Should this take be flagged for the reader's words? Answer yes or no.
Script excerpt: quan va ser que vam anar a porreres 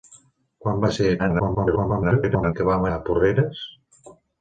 yes